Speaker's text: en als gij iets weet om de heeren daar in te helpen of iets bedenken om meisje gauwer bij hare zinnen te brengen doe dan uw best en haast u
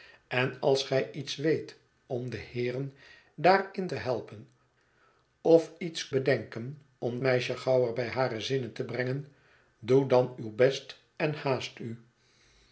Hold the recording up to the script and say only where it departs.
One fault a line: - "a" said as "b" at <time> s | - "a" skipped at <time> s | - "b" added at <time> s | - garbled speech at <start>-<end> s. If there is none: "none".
none